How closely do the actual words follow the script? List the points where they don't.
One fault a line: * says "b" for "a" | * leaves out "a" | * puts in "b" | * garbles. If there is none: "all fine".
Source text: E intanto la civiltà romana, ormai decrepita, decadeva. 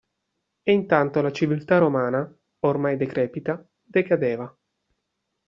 all fine